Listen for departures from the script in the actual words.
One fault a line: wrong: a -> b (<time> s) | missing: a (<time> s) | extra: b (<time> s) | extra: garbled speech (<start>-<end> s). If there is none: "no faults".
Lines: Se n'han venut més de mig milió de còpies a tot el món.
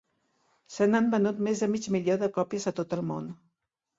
no faults